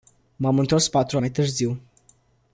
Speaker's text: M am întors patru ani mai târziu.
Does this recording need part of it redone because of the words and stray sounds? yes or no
yes